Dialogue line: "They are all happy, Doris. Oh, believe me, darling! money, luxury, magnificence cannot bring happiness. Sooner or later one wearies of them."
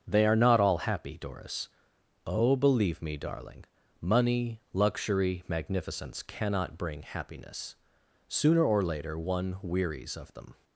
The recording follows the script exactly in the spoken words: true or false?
false